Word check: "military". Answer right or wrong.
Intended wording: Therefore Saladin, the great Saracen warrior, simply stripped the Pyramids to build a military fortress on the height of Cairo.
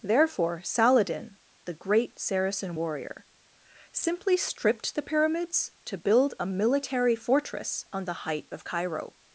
right